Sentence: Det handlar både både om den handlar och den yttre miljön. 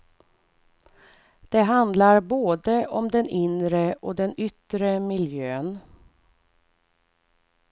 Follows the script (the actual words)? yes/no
no